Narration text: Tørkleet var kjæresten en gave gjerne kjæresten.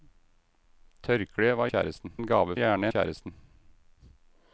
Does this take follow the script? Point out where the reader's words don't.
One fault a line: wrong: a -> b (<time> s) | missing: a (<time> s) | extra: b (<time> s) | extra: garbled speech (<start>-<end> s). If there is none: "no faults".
no faults